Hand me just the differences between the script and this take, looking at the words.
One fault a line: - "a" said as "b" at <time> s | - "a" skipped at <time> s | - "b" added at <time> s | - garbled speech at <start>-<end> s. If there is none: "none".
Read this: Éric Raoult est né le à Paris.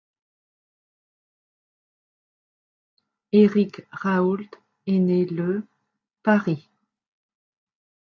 - "à" skipped at 5.6 s